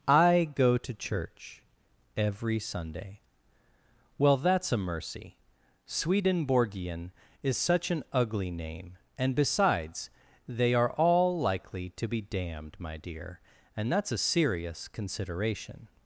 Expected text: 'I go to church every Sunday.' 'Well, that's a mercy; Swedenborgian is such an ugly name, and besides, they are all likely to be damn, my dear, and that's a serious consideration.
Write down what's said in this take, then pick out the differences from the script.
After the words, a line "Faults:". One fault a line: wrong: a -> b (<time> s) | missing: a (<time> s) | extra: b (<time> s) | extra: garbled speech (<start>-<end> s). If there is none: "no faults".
'I go to church every Sunday.' 'Well, that's a mercy; Swedenborgian is such an ugly name, and besides, they are all likely to be damned, my dear, and that's a serious consideration.
Faults:
wrong: damn -> damned (12.2 s)